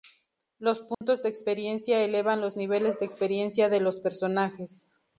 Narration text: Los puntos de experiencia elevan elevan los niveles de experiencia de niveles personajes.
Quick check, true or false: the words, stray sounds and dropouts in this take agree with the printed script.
false